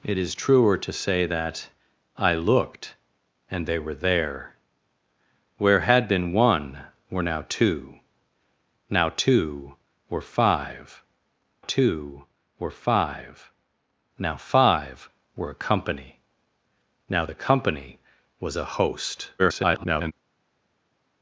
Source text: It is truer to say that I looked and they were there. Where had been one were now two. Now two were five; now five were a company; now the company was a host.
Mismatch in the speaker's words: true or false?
true